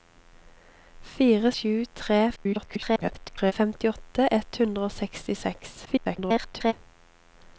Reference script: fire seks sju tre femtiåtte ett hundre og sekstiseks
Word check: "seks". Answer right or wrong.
wrong